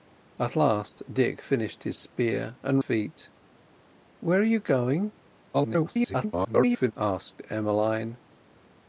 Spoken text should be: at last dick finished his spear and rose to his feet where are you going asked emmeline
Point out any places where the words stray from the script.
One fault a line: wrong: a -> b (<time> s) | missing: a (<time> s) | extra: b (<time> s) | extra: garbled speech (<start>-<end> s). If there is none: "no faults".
missing: rose to his (2.8 s)
extra: garbled speech (5.5-6.9 s)